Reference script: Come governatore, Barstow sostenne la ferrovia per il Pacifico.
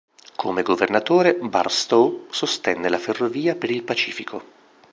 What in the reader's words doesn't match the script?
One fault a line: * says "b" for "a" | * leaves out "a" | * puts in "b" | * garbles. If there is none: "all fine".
all fine